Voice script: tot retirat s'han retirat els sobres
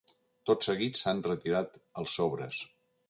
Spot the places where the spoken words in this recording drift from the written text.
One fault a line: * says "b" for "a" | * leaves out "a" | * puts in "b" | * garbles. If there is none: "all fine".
* says "seguit" for "retirat"